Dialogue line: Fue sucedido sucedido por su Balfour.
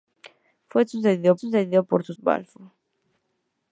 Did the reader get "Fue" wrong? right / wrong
right